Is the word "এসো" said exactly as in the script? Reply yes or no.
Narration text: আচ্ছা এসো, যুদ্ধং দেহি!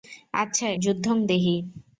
no